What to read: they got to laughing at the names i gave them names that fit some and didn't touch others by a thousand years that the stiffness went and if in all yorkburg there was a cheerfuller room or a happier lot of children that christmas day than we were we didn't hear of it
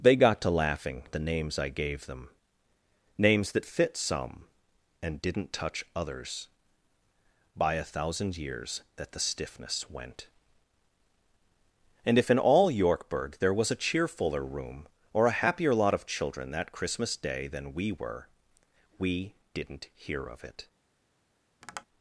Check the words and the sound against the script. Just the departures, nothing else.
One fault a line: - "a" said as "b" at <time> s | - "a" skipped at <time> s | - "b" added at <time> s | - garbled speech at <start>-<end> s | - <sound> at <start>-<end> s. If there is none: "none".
- tap at 21.6-21.9 s